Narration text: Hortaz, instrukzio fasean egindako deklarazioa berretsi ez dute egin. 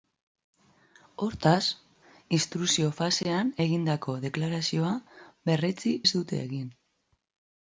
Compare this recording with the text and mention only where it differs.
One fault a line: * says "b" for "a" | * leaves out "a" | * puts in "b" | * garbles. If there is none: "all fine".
all fine